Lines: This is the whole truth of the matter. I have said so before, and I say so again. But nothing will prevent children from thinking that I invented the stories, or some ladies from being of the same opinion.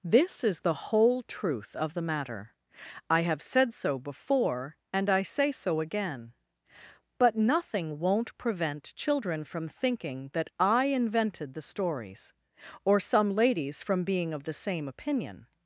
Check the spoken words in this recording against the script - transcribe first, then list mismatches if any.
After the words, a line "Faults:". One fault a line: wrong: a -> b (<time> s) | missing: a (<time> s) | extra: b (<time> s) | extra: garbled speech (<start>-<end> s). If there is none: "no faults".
This is the whole truth of the matter. I have said so before, and I say so again. But nothing won't prevent children from thinking that I invented the stories, or some ladies from being of the same opinion.
Faults:
wrong: will -> won't (8.0 s)